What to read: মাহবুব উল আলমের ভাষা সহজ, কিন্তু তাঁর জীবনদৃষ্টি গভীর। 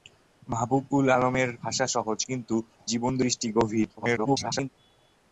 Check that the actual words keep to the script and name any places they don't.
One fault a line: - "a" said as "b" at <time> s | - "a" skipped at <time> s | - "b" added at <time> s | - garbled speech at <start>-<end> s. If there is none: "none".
- "তাঁর" skipped at 2.5 s
- garbled speech at 4.0-4.7 s